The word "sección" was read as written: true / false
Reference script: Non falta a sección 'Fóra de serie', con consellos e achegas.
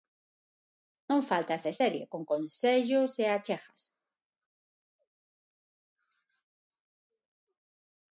false